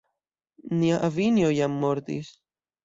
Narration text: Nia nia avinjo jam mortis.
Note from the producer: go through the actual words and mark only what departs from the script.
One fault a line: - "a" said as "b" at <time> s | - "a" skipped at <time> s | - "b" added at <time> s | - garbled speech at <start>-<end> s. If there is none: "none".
- "nia" skipped at 1.0 s